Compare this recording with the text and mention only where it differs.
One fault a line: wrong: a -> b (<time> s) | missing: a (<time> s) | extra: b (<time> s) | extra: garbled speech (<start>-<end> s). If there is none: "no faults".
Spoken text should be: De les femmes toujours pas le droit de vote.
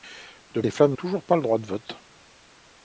no faults